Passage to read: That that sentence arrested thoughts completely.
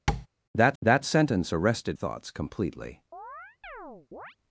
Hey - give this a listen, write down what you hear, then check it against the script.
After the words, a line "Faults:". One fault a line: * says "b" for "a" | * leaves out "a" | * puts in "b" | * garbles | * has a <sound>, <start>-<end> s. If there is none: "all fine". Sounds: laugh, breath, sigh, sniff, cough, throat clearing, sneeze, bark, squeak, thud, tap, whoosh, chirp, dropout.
That that sentence arrested thoughts completely.
Faults:
* has a tap, 0.1-0.3 s
* has a chirp, 3.1-4.4 s